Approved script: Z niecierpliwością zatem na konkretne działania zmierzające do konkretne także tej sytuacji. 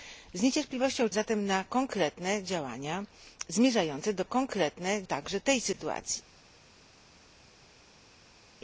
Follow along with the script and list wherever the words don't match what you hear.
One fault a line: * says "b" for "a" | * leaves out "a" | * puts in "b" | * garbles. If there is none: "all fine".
all fine